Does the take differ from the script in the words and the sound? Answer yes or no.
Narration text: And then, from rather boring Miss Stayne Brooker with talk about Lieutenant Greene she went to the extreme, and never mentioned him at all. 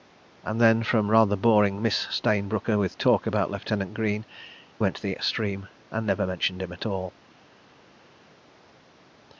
yes